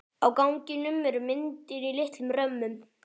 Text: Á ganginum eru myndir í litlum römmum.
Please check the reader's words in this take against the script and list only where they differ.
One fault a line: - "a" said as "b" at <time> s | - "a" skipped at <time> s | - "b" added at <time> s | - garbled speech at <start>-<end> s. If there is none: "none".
none